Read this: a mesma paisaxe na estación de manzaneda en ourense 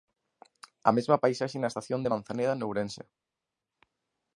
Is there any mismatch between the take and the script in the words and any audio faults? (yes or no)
no